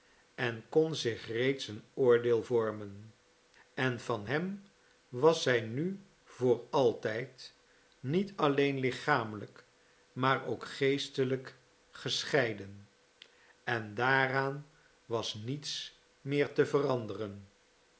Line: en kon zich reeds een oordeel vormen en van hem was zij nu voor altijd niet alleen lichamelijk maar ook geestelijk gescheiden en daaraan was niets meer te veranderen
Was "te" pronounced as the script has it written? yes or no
yes